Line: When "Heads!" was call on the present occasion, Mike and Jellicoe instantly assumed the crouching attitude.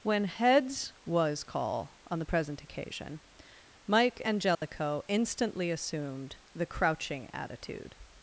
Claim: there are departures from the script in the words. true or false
false